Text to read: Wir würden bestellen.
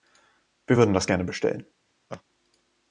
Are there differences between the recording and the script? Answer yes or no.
yes